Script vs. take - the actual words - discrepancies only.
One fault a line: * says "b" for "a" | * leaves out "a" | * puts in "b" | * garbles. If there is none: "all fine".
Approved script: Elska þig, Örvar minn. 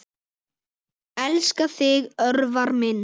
all fine